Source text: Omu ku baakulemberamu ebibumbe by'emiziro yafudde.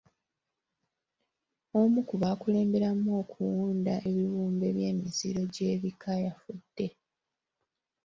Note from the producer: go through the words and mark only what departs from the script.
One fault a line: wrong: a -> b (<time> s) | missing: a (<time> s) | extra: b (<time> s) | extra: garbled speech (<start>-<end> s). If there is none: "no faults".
extra: okuwunda (3.2 s)
extra: gy'ebika (5.5 s)